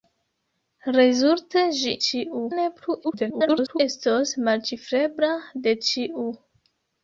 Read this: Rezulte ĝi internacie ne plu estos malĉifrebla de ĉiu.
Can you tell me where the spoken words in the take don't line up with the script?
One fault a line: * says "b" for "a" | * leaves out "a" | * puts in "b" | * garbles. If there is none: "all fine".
* says "ĉiu" for "internacie"
* garbles